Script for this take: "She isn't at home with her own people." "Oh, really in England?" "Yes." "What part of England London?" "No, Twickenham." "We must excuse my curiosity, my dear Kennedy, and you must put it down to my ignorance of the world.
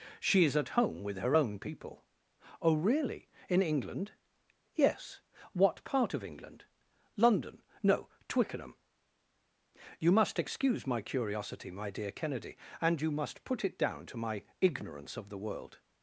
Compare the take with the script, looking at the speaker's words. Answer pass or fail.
fail